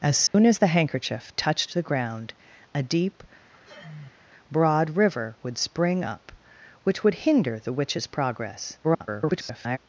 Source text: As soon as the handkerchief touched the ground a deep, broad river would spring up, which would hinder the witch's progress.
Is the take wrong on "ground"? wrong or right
right